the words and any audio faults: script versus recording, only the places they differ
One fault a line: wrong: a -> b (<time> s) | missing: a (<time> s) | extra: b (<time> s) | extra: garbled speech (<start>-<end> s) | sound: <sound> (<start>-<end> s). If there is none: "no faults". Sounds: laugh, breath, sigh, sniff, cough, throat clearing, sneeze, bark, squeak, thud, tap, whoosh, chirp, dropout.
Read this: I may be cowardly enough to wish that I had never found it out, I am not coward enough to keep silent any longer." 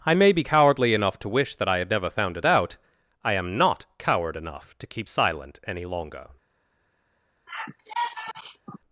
sound: sigh (7.5-8.8 s)